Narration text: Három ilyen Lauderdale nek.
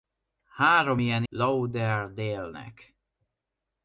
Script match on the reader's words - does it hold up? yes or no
yes